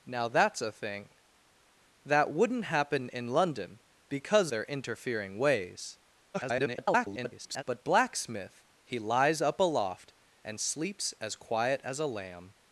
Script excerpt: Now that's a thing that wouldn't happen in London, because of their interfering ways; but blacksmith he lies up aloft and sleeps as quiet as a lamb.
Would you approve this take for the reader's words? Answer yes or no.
no